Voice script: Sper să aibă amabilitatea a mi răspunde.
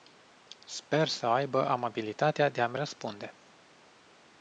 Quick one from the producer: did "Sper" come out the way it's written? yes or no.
yes